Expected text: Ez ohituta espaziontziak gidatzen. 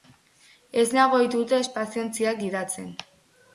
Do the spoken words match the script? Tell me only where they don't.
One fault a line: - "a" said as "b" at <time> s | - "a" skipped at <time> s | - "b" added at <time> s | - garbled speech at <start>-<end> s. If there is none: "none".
- "nago" added at 1.0 s